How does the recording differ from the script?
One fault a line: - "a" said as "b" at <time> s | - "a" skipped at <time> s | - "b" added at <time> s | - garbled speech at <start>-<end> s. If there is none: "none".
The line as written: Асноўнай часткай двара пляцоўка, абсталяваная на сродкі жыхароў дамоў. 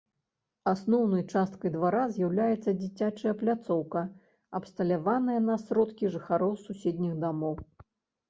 - "з'яўляецца дзіцячая" added at 2.1 s
- "суседніх" added at 6.7 s